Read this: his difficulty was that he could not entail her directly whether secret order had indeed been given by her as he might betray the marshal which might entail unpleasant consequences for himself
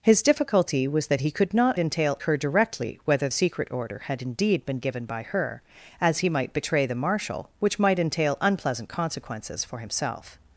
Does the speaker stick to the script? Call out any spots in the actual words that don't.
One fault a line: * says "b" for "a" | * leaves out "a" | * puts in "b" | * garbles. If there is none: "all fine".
all fine